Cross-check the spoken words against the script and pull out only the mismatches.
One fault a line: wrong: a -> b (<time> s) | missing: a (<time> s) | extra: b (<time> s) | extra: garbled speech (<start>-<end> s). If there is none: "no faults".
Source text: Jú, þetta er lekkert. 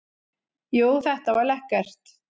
wrong: er -> var (1.4 s)